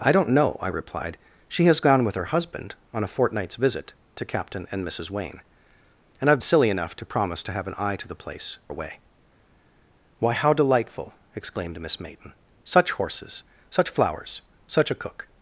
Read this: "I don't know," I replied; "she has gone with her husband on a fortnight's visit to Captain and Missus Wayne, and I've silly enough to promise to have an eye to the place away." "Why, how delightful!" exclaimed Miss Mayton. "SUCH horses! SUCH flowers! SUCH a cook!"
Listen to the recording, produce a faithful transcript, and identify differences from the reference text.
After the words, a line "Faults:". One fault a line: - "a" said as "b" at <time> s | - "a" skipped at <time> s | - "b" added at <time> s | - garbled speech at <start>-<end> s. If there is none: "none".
"I don't know," I replied; "she has gone with her husband on a fortnight's visit to Captain and Missus Wayne, and I've silly enough to promise to have an eye to the place away." "Why, how delightful!" exclaimed Miss Mayton. "SUCH horses! SUCH flowers! SUCH a cook!"
Faults:
none